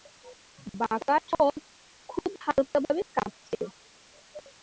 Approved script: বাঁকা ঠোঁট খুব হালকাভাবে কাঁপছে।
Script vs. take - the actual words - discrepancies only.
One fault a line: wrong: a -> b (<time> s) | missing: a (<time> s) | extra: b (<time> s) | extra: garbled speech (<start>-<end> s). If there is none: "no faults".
no faults